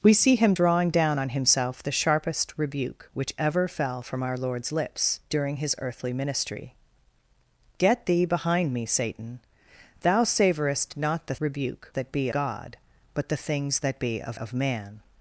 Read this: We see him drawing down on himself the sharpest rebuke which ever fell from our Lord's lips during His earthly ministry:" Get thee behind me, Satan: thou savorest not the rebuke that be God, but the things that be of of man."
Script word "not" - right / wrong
right